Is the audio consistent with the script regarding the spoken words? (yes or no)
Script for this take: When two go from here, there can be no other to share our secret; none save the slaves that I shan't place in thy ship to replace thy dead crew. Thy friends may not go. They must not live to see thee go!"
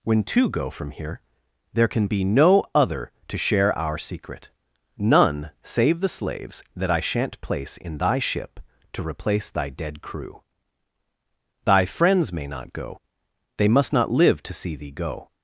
yes